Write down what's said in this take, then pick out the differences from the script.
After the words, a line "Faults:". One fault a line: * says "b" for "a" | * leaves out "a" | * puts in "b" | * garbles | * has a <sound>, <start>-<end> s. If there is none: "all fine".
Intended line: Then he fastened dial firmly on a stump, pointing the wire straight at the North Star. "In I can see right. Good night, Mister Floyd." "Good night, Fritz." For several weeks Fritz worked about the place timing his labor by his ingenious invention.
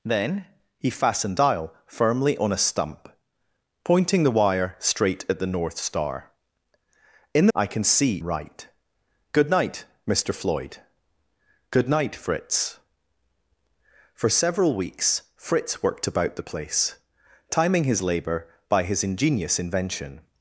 Then he fastened dial firmly on a stump, pointing the wire straight at the North Star. "In I can see right. Good night, Mister Floyd." "Good night, Fritz." For several weeks Fritz worked about the place timing his labor by his ingenious invention.
Faults:
all fine